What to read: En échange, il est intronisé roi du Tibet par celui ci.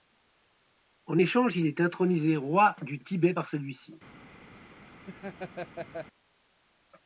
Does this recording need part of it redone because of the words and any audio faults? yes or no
yes